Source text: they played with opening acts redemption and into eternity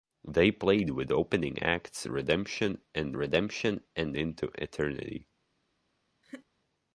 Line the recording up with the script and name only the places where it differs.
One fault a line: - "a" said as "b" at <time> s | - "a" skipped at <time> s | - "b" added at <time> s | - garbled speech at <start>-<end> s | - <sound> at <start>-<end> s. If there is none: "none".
- "redemption and" added at 3.1 s
- laugh at 6.2-6.5 s